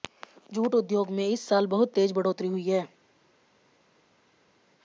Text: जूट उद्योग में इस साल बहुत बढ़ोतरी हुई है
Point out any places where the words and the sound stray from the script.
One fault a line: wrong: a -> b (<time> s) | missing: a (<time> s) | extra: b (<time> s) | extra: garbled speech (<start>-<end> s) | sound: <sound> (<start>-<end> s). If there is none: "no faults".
extra: तेज (1.9 s)